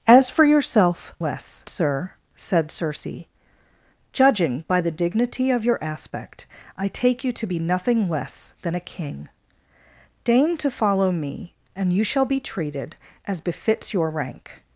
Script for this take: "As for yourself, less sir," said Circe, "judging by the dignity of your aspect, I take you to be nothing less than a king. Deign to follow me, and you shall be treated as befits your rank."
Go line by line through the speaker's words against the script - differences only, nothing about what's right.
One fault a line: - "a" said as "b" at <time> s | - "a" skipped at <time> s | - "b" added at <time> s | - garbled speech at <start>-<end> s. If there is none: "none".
none